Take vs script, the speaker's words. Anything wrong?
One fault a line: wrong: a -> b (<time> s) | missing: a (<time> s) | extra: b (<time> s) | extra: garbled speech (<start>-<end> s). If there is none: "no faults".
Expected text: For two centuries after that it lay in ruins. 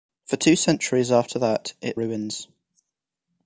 missing: lay in (2.0 s)